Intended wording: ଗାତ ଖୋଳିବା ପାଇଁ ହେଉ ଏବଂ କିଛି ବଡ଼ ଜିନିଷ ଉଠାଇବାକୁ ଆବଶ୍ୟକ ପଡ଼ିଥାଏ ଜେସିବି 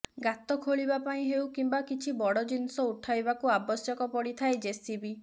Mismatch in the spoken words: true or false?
true